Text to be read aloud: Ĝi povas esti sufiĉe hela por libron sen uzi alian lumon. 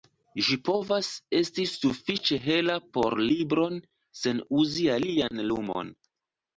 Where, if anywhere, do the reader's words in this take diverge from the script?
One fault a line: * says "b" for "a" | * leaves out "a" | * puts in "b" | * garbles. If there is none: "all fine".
all fine